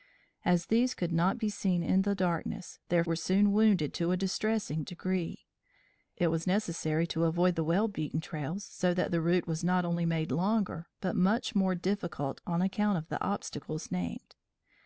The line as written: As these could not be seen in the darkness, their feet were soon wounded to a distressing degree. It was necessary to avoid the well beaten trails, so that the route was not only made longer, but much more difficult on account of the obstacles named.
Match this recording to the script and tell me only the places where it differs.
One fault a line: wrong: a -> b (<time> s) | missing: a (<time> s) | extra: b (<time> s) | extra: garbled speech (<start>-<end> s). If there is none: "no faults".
missing: feet (3.0 s)